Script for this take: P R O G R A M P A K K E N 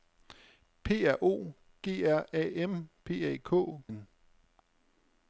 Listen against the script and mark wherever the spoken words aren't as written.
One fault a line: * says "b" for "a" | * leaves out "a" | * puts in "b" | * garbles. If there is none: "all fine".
* leaves out "K E"